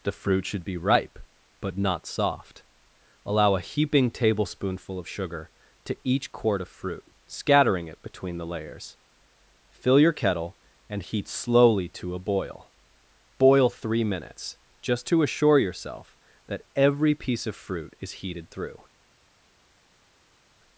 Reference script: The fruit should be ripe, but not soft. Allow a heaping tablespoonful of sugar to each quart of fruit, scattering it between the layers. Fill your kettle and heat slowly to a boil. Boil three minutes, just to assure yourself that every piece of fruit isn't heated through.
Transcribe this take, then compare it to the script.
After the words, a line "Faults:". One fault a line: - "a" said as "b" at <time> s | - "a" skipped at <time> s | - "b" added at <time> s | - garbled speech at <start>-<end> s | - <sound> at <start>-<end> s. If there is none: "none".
The fruit should be ripe, but not soft. Allow a heaping tablespoonful of sugar to each quart of fruit, scattering it between the layers. Fill your kettle and heat slowly to a boil. Boil three minutes, just to assure yourself that every piece of fruit is heated through.
Faults:
- "isn't" said as "is" at 18.0 s